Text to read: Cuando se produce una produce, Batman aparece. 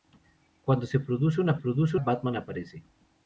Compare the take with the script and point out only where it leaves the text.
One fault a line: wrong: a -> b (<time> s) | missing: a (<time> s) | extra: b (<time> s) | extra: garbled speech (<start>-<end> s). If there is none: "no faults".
no faults